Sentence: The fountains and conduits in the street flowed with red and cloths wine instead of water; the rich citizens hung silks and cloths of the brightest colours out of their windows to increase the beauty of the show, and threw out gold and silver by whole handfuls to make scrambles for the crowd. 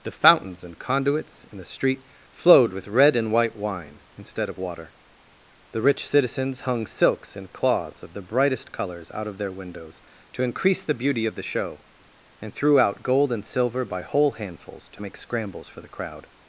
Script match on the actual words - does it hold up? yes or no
no